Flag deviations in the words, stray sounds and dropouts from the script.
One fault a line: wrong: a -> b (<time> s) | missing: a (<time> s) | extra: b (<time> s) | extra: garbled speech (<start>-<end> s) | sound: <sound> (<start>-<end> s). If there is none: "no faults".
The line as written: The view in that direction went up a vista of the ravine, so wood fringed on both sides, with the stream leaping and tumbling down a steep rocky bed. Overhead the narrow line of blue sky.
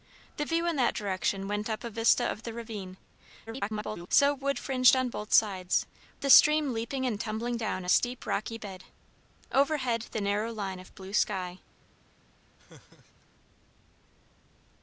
extra: garbled speech (3.5-4.1 s)
missing: with (5.9 s)
sound: laugh (12.6-13.3 s)